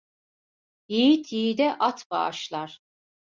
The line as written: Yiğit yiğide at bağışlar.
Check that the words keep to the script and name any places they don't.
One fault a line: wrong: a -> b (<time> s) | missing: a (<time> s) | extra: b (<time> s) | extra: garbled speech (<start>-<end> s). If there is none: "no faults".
no faults